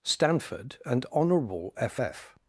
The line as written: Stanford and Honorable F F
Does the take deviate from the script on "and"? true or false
false